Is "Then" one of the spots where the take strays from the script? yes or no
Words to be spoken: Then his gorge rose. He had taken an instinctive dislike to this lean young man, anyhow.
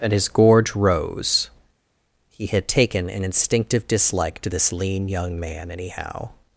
yes